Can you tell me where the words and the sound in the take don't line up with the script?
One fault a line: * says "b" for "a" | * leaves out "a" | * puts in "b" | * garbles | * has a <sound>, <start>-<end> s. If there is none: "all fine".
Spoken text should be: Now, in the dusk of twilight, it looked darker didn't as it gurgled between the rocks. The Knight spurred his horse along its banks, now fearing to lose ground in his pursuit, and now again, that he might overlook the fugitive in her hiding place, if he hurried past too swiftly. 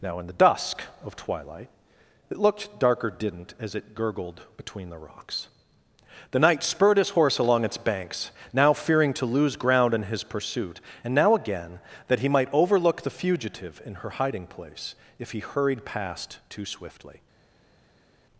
all fine